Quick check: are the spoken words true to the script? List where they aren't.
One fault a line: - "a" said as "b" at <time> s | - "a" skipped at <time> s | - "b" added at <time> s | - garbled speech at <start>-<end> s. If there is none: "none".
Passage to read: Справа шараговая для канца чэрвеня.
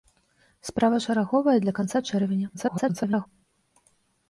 - garbled speech at 2.5-3.3 s